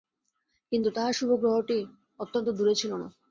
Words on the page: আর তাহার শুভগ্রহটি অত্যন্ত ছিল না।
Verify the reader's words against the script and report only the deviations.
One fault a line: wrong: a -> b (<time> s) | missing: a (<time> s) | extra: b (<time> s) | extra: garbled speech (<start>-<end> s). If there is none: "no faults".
wrong: আর -> কিন্তু (0.7 s)
extra: দূরে (2.5 s)